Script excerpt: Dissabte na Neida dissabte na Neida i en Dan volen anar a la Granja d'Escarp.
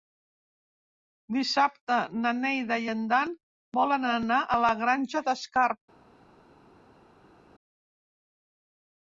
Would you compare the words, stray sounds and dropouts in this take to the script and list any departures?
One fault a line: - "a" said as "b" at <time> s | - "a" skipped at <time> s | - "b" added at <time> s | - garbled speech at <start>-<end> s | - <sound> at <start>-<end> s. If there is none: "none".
- "dissabte na Neida" skipped at 2.8 s